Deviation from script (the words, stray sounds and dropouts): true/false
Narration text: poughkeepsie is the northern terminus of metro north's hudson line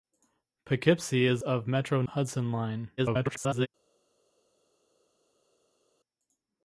true